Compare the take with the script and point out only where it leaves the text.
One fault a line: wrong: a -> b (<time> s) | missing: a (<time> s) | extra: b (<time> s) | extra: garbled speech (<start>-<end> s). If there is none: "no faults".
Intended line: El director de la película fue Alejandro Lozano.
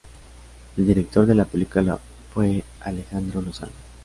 no faults